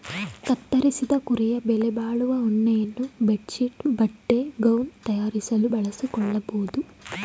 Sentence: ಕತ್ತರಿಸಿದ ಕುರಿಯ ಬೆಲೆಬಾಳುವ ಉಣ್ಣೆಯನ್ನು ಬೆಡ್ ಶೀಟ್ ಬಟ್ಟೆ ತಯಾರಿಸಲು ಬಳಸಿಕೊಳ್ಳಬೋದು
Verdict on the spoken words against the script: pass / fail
fail